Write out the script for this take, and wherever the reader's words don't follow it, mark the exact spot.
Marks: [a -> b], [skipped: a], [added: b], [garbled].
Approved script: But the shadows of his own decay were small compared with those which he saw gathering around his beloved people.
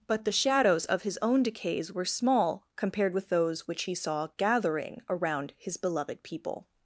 But the shadows of his own [decay -> decays] were small compared with those which he saw gathering around his beloved people.